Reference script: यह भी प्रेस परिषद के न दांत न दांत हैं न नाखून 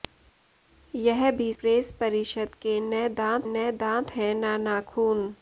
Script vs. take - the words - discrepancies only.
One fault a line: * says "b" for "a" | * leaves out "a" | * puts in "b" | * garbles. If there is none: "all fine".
all fine